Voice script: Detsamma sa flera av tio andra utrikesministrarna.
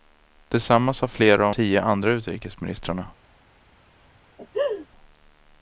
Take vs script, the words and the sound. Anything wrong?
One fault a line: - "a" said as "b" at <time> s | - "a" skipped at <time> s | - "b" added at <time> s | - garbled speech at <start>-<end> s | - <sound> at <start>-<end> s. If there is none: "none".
- laugh at 4.4-4.9 s